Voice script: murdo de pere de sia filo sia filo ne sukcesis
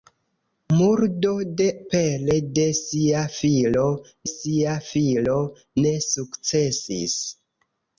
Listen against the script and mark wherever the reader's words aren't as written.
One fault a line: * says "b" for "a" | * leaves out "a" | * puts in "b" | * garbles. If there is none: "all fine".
all fine